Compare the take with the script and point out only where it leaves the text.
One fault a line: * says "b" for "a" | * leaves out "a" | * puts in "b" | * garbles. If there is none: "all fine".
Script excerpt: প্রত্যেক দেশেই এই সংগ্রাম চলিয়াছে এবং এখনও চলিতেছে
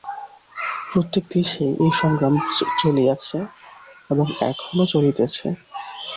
all fine